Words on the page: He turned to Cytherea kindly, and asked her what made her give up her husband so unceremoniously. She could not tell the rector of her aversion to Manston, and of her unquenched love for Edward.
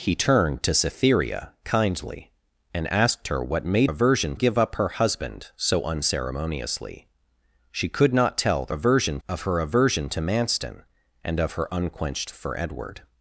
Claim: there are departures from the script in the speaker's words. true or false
true